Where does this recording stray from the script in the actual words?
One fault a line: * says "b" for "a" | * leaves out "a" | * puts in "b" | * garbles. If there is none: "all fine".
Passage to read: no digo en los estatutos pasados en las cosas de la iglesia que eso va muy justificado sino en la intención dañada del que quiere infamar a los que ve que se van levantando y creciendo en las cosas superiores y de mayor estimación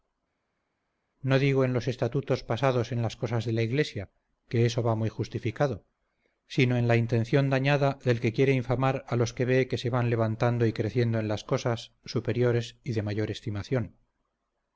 all fine